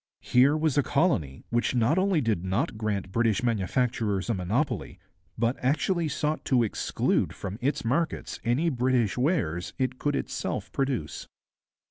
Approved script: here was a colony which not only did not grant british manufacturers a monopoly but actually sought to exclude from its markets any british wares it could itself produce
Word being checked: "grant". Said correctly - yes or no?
yes